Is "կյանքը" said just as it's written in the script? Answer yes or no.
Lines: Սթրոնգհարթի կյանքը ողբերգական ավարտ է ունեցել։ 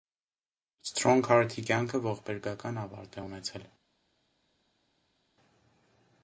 yes